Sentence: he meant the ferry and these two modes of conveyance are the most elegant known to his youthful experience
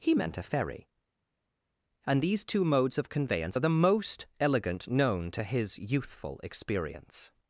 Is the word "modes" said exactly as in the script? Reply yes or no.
yes